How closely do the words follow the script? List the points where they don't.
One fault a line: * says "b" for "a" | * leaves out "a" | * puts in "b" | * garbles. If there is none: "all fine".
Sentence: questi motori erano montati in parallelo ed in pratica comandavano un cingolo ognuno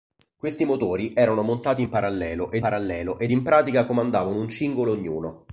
* puts in "parallelo ed"